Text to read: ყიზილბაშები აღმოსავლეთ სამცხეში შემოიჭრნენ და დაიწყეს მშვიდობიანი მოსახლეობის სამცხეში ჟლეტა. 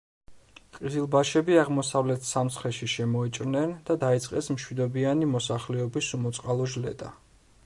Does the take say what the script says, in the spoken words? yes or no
no